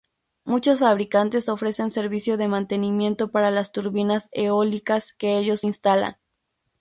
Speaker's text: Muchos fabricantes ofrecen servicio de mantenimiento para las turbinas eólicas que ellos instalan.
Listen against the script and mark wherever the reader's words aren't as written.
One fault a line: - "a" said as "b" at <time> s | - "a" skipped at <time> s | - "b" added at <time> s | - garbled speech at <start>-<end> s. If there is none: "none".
none